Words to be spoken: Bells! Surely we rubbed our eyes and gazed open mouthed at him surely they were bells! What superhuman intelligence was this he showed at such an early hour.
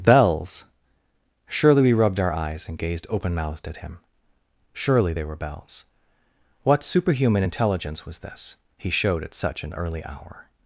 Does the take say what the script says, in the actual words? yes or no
yes